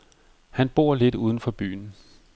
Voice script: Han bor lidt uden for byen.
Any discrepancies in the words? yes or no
no